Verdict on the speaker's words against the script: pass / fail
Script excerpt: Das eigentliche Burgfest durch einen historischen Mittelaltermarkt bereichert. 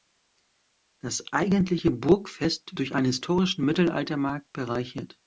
pass